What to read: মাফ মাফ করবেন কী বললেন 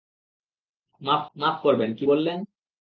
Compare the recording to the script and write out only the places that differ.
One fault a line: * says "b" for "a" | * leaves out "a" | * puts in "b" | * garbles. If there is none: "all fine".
all fine